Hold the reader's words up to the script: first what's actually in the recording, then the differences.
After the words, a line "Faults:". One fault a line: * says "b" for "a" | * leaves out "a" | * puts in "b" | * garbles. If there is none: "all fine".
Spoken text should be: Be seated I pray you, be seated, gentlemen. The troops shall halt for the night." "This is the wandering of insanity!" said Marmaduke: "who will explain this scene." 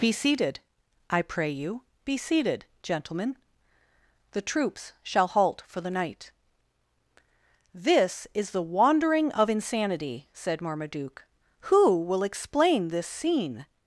Be seated I pray you, be seated, gentlemen. The troops shall halt for the night." "This is the wandering of insanity!" said Marmaduke: "who will explain this scene."
Faults:
all fine